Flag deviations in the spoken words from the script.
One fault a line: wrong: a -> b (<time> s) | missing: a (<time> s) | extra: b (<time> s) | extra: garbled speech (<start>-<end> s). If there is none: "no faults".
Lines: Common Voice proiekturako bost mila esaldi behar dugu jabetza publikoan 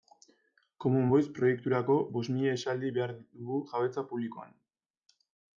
no faults